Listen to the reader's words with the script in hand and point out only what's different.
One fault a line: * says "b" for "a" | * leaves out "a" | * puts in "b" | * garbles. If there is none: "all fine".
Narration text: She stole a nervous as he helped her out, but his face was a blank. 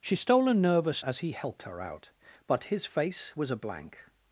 all fine